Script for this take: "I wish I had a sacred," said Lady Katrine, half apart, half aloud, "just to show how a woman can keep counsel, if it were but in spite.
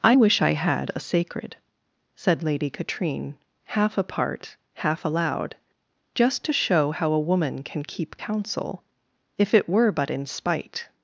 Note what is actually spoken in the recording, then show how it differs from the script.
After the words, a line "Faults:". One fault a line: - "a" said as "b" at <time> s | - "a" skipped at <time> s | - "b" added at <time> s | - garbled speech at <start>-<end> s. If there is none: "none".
"I wish I had a sacred," said Lady Katrine, half apart, half aloud, "just to show how a woman can keep counsel, if it were but in spite.
Faults:
none